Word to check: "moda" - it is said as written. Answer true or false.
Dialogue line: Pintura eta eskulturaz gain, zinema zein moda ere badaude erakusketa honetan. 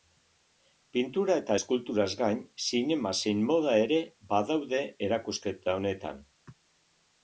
true